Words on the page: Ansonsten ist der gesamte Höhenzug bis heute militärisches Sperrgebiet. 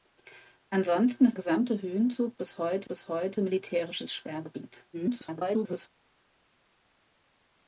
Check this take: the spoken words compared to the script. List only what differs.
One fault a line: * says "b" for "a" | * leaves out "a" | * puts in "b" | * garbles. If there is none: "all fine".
* leaves out "der"
* puts in "bis heute"
* garbles